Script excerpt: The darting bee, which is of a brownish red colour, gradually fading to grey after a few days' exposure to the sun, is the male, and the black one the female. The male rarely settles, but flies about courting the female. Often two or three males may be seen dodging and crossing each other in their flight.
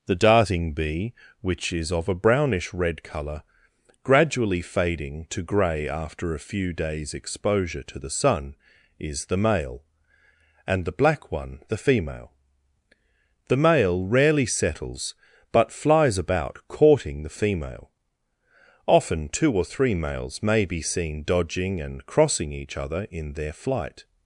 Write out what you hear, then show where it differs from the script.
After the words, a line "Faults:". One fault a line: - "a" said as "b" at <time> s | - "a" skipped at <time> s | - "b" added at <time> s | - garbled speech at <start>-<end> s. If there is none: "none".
The darting bee, which is of a brownish red colour, gradually fading to grey after a few days' exposure to the sun, is the male, and the black one the female. The male rarely settles, but flies about courting the female. Often two or three males may be seen dodging and crossing each other in their flight.
Faults:
none